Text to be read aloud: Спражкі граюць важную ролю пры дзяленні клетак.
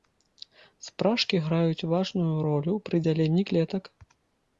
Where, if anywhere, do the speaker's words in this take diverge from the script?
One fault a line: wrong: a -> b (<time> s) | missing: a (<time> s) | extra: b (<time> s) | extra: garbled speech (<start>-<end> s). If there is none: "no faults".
no faults